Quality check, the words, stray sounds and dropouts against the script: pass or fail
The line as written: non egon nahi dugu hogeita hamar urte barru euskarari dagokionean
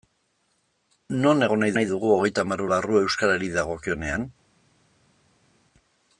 fail